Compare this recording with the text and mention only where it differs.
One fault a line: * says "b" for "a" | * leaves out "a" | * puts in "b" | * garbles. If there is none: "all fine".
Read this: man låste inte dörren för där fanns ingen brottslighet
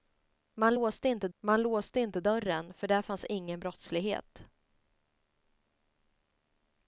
* puts in "man låste inte"